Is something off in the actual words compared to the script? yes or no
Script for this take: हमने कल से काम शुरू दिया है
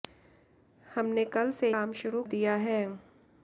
no